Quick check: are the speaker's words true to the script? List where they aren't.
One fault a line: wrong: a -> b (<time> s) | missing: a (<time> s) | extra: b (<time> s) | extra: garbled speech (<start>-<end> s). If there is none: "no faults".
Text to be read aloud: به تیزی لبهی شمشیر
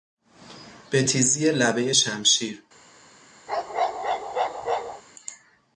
no faults